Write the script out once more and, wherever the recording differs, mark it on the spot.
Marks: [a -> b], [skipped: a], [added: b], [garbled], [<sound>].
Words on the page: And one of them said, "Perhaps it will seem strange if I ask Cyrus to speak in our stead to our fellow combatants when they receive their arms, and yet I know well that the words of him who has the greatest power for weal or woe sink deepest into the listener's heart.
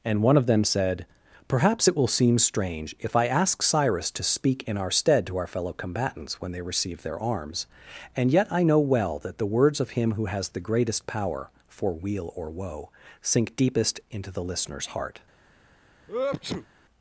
And one of them said, "Perhaps it will seem strange if I ask Cyrus to speak in our stead to our fellow combatants when they receive their arms, and yet I know well that the words of him who has the greatest power for weal or woe sink deepest into the listener's heart. [sneeze]